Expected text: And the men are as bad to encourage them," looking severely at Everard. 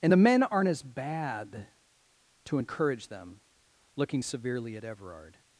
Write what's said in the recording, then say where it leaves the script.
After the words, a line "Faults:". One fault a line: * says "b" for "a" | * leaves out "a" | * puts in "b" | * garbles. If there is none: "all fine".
And the men aren't as bad to encourage them," looking severely at Everard.
Faults:
* says "aren't" for "are"